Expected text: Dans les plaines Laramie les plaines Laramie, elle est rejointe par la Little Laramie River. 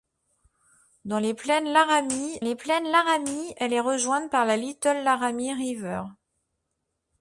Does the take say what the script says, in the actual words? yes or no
yes